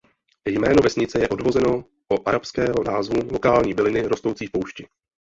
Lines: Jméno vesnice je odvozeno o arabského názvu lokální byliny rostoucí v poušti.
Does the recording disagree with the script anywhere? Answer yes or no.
no